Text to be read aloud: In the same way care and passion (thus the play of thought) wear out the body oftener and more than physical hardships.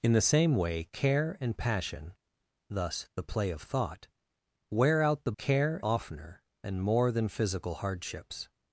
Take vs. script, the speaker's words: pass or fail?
fail